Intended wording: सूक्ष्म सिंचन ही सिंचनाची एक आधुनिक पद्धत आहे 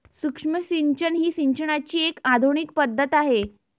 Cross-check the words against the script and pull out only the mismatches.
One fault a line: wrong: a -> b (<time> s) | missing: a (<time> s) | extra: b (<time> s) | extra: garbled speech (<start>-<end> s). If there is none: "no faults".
no faults